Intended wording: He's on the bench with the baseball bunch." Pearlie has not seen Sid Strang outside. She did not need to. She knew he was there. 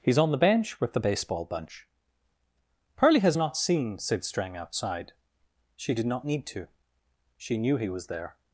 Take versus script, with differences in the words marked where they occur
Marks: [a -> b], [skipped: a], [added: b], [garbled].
He's on the bench with the baseball bunch." Pearlie has not seen Sid Strang outside. She did not need to. She knew he was there.